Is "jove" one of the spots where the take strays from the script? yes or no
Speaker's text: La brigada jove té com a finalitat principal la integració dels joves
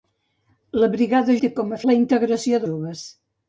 yes